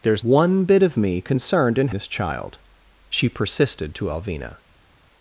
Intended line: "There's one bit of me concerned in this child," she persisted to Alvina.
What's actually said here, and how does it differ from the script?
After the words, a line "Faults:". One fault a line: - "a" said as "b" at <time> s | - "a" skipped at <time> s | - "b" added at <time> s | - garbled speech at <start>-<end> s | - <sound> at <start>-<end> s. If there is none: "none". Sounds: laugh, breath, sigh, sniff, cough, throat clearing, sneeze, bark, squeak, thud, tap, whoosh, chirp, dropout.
"There's one bit of me concerned in this child," she persisted to Alvina.
Faults:
none